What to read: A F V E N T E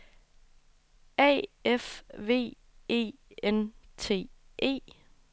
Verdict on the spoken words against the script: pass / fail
pass